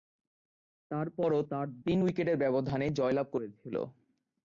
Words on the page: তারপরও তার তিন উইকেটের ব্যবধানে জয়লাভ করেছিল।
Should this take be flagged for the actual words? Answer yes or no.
no